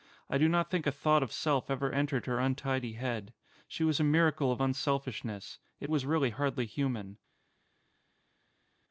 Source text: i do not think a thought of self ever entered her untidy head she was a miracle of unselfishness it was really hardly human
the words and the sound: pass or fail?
pass